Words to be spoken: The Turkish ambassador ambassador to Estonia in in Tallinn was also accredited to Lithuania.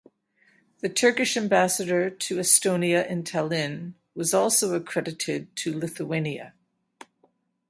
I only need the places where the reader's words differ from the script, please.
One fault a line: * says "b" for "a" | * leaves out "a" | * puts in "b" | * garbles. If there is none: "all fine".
* leaves out "ambassador"
* leaves out "in"